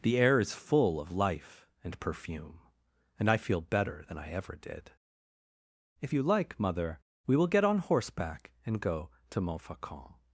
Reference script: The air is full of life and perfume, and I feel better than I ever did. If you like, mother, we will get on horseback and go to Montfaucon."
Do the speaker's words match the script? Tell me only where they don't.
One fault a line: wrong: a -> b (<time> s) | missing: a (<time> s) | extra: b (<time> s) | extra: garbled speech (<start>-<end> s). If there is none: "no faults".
no faults